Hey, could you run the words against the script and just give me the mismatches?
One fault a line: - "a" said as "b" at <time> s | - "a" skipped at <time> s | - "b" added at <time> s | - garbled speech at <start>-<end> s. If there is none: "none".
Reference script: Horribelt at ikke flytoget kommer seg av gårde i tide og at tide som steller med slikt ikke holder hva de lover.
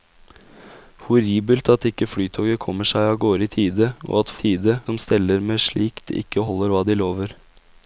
none